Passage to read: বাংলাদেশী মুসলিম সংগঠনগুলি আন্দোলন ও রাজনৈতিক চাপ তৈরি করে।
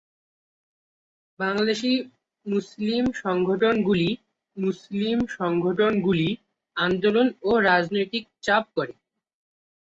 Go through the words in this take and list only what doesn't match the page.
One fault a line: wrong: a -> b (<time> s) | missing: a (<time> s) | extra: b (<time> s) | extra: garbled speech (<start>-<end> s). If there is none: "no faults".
extra: মুসলিম সংগঠনগুলি (4.6 s)
missing: তৈরি (8.6 s)